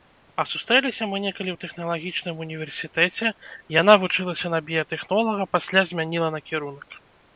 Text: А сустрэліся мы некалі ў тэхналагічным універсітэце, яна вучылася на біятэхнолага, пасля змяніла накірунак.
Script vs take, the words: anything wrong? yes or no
no